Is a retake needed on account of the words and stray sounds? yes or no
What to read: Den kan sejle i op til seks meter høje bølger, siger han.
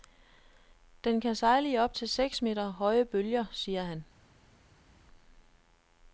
no